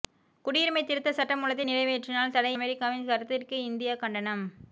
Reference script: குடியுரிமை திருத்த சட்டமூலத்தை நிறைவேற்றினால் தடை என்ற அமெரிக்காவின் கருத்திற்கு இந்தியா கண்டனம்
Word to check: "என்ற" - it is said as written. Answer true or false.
false